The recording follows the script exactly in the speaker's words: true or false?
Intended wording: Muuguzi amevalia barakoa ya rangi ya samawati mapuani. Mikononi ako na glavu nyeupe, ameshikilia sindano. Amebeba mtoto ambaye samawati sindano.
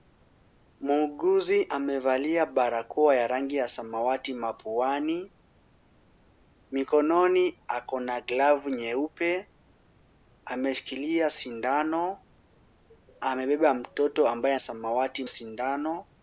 true